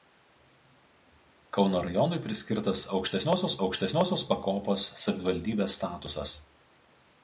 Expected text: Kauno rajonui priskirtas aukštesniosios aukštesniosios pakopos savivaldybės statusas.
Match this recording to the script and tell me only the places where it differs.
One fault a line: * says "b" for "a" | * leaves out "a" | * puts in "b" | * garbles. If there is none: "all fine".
all fine